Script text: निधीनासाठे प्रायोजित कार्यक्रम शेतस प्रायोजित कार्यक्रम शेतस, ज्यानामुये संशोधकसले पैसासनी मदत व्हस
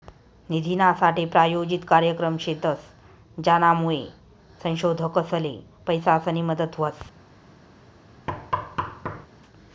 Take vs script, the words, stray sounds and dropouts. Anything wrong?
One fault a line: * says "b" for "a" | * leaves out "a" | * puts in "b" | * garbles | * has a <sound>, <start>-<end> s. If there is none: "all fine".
* leaves out "प्रायोजित कार्यक्रम शेतस"
* has a thud, 8.3-9.3 s